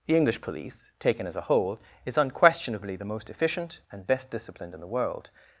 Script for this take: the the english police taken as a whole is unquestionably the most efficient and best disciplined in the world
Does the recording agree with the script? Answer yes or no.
no